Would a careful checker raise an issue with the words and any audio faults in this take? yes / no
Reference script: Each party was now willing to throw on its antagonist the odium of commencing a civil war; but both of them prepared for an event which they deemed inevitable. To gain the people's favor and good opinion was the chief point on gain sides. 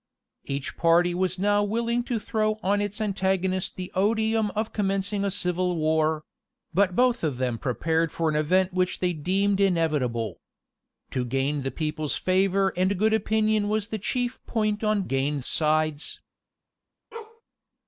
yes